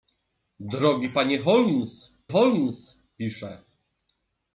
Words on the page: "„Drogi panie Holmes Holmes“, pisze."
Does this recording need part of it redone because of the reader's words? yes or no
no